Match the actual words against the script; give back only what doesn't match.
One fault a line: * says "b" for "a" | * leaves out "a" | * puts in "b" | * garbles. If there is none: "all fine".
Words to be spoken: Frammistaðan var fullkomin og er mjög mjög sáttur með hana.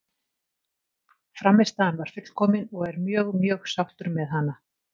all fine